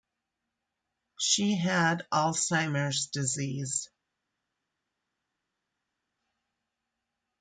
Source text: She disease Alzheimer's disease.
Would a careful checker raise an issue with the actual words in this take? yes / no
yes